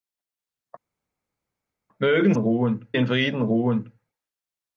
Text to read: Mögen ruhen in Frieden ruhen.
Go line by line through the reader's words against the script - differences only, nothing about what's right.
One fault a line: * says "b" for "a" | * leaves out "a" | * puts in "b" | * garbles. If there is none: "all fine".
all fine